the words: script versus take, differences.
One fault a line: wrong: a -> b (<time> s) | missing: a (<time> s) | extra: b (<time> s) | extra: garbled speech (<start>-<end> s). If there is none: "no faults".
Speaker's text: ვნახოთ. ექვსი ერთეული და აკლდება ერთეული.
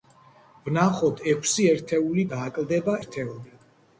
no faults